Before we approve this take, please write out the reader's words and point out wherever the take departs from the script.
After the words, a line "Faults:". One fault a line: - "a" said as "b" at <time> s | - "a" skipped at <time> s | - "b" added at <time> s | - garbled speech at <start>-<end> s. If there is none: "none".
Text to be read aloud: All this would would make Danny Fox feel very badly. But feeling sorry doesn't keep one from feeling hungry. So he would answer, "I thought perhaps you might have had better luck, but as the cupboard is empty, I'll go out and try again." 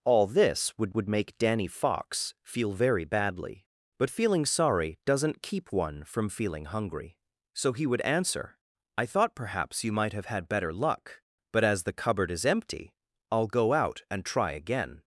All this would would make Danny Fox feel very badly. But feeling sorry doesn't keep one from feeling hungry. So he would answer, "I thought perhaps you might have had better luck, but as the cupboard is empty, I'll go out and try again."
Faults:
none